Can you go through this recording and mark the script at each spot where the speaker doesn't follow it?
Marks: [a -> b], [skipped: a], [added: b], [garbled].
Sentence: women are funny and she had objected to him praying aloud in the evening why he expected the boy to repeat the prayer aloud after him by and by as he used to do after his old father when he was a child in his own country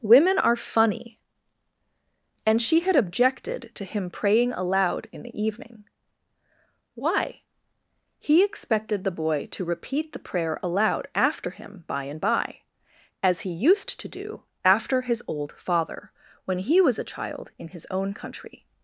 women are funny and she had objected to him praying aloud in the evening why he expected the boy to repeat the prayer aloud after him by and by as he used to do after his old father when he was a child in his own country